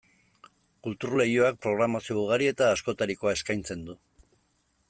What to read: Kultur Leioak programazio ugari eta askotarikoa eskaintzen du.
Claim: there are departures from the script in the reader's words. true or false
false